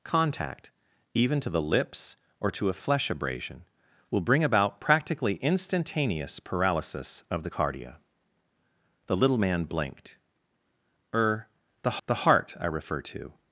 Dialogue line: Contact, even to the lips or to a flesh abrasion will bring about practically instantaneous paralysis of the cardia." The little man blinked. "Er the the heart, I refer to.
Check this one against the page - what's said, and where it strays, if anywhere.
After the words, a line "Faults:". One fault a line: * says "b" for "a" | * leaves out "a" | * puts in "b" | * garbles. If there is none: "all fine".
Contact, even to the lips or to a flesh abrasion will bring about practically instantaneous paralysis of the cardia." The little man blinked. "Er the the heart, I refer to.
Faults:
all fine